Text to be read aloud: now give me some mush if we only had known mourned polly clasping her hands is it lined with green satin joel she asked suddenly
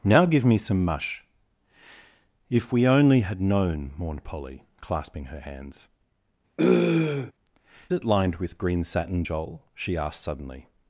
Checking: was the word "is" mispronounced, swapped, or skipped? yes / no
yes